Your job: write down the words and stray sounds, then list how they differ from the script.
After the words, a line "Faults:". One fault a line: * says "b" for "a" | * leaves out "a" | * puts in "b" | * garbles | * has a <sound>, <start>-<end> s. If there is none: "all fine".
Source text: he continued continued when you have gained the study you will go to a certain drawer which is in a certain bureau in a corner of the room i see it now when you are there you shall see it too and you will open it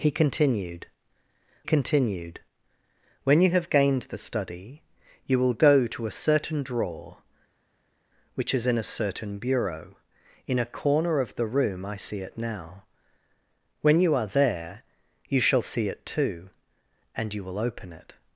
he continued continued when you have gained the study you will go to a certain drawer which is in a certain bureau in a corner of the room i see it now when you are there you shall see it too and you will open it
Faults:
all fine